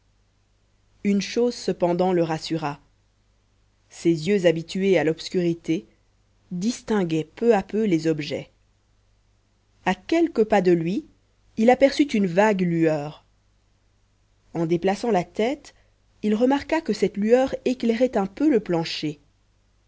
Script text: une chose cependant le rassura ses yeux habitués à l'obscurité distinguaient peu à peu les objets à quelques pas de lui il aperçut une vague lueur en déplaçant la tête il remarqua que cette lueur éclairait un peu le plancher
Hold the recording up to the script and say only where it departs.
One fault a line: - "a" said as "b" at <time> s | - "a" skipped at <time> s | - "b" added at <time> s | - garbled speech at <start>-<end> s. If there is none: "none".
none